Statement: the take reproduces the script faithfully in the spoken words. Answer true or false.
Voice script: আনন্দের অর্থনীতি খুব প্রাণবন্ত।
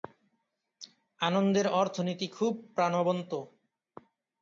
true